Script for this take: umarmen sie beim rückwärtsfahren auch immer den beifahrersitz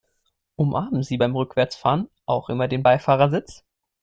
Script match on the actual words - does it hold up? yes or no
yes